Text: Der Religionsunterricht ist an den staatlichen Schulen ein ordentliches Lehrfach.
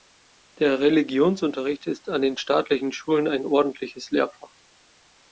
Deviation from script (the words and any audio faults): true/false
false